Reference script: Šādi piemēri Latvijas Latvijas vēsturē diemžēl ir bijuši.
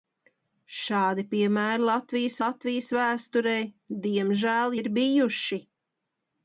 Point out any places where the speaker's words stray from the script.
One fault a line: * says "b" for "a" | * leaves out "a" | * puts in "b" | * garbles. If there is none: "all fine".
all fine